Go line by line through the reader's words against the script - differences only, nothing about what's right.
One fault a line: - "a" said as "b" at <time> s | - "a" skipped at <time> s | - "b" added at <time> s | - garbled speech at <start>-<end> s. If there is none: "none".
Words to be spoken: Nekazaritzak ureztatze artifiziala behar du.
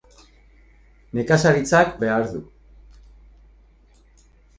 - "ureztatze artifiziala" skipped at 2.0 s